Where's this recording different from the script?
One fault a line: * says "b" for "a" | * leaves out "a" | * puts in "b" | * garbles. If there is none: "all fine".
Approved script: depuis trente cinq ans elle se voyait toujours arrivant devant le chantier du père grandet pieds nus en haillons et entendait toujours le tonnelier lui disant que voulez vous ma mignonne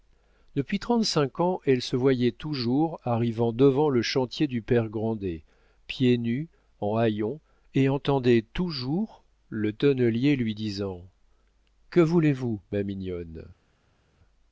all fine